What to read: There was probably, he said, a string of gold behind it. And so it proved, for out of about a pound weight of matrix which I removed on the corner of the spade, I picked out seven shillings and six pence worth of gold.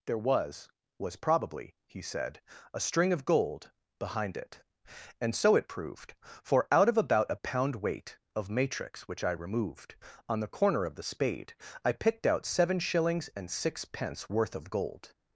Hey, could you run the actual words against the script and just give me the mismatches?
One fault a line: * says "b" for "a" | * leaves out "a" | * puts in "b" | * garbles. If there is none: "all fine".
* puts in "was"